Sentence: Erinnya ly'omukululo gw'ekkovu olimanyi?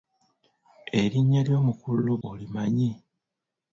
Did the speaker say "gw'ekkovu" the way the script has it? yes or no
no